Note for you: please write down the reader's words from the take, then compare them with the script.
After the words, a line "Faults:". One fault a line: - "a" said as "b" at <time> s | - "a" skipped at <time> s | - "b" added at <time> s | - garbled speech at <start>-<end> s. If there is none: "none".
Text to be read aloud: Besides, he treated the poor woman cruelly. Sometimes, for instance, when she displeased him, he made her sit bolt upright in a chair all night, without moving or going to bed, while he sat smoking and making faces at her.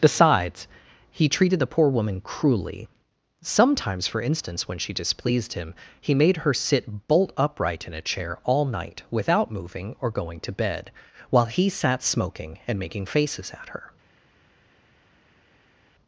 Besides, he treated the poor woman cruelly. Sometimes, for instance, when she displeased him, he made her sit bolt upright in a chair all night, without moving or going to bed, while he sat smoking and making faces at her.
Faults:
none